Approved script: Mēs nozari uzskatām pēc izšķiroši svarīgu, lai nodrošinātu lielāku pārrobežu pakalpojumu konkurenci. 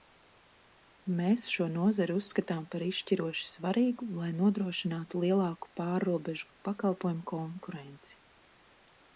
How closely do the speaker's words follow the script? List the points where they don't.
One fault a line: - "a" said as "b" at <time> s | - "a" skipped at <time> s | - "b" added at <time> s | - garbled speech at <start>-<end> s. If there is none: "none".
- "šo" added at 1.6 s
- "pēc" said as "par" at 2.8 s